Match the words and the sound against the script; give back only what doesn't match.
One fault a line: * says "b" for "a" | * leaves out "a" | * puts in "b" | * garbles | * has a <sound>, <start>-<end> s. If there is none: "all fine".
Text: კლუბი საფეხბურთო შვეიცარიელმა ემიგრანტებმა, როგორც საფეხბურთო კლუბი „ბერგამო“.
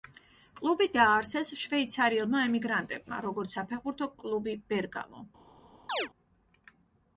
* says "დააარსეს" for "საფეხბურთო"
* has a chirp, 5.9-6.1 s